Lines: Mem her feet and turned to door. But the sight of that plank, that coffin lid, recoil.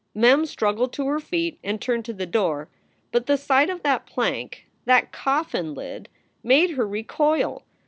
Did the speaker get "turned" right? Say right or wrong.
right